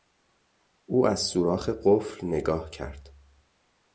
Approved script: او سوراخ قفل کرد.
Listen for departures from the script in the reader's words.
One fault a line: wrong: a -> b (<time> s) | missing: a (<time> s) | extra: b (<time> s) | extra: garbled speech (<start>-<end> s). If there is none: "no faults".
extra: از (1.1 s)
extra: نگاه (2.3 s)